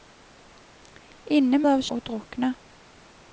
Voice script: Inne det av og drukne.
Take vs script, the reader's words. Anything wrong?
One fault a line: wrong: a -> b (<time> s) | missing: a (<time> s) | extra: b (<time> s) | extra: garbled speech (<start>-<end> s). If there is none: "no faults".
no faults